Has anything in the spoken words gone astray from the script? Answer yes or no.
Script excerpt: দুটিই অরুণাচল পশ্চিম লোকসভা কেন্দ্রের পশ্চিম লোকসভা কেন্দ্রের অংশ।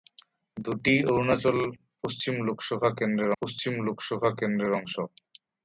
no